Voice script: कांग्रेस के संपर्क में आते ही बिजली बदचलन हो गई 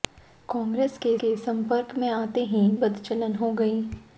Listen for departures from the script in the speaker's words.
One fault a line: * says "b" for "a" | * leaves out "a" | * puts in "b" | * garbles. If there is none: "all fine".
* puts in "के"
* leaves out "बिजली"